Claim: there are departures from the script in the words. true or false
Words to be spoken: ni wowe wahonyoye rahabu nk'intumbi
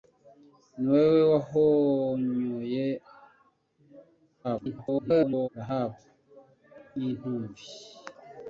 true